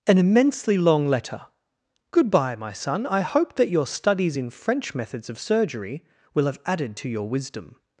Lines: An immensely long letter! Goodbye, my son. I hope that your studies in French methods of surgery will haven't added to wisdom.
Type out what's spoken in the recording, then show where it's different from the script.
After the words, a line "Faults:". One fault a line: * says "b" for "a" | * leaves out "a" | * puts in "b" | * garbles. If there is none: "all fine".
An immensely long letter! Goodbye, my son. I hope that your studies in French methods of surgery will have added to your wisdom.
Faults:
* says "have" for "haven't"
* puts in "your"